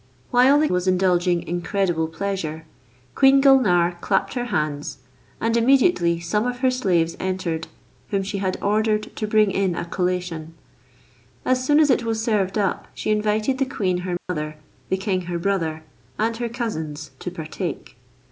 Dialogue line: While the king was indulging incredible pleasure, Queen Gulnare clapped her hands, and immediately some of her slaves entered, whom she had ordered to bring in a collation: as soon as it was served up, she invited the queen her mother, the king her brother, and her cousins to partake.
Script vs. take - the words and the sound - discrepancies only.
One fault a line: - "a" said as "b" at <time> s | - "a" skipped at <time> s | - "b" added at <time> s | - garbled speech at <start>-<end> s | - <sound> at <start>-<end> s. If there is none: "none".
- "king" skipped at 0.7 s
- dropout at 14.2-14.3 s